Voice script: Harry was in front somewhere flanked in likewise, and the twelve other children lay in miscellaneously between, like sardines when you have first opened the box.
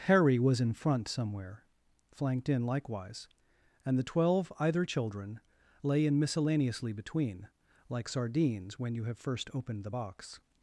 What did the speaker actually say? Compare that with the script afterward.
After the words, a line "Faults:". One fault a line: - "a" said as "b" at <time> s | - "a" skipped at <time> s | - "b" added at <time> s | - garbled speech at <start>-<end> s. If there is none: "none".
Harry was in front somewhere flanked in likewise, and the twelve either children lay in miscellaneously between, like sardines when you have first opened the box.
Faults:
- "other" said as "either" at 4.6 s